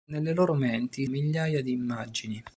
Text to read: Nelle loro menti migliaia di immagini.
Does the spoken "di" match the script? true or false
true